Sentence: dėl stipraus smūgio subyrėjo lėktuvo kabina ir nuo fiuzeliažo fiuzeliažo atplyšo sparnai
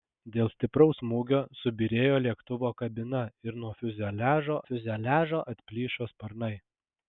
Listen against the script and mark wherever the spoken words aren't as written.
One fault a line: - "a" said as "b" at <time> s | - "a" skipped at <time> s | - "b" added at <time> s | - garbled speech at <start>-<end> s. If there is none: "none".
none